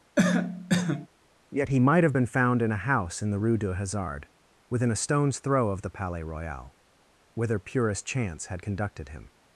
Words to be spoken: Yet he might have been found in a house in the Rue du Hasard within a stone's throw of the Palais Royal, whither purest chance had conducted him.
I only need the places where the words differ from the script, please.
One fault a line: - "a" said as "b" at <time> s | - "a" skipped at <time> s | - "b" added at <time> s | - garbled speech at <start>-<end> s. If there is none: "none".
none